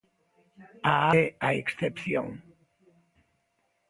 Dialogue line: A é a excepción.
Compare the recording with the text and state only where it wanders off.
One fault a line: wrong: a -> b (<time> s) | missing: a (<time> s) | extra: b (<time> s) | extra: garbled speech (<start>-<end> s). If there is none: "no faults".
no faults